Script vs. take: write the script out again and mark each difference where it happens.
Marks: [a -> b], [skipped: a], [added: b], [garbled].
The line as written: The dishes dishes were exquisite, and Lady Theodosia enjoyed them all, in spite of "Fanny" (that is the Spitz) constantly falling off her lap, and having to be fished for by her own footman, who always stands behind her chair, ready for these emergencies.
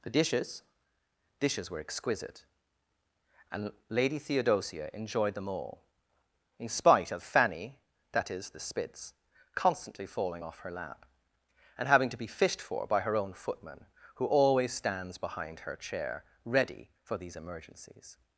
The dishes dishes were exquisite, and Lady Theodosia enjoyed them all, in spite of "Fanny" (that is the Spitz) constantly falling off her lap, and having to be fished for by her own footman, who always stands behind her chair, ready for these emergencies.